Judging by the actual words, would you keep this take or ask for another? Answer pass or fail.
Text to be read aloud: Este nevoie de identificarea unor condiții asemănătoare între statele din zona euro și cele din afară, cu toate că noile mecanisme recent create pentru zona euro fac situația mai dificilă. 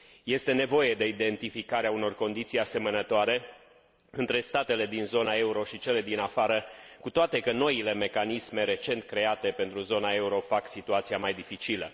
pass